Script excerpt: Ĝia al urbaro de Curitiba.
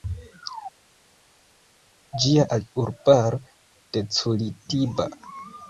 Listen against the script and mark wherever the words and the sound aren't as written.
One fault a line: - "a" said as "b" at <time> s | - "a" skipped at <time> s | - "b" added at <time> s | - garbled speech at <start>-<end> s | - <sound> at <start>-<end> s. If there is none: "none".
none